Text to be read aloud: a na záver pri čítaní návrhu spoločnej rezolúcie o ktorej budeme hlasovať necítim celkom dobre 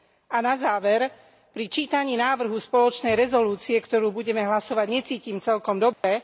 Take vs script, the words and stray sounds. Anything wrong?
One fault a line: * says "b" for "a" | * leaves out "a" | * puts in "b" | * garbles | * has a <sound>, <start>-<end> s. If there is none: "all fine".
* has a dropout, 5.9-6.0 s